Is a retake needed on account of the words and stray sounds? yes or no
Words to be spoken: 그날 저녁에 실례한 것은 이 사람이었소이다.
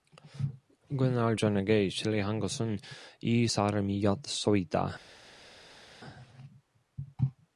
no